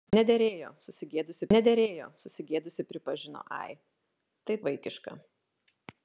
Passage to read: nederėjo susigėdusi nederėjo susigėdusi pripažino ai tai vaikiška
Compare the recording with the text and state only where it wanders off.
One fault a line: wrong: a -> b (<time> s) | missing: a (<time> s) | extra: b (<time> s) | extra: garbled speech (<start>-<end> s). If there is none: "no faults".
no faults